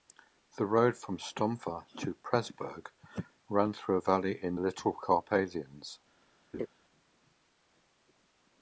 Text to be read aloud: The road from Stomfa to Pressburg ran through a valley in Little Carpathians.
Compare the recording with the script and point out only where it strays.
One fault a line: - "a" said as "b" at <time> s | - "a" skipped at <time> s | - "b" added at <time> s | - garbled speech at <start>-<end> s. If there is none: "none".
none